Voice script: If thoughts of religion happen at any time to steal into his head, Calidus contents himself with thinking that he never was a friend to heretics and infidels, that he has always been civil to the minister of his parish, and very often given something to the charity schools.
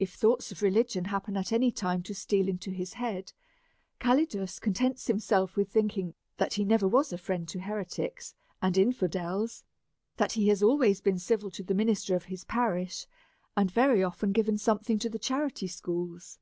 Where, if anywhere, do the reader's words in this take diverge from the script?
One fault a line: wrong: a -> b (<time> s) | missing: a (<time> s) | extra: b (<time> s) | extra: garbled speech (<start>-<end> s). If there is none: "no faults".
no faults